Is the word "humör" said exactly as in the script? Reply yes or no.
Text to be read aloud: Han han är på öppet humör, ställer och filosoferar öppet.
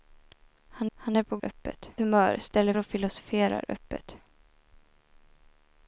yes